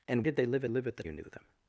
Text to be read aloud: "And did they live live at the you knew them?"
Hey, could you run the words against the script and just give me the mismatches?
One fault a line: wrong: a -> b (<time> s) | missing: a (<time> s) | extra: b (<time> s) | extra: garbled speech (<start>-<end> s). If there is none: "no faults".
no faults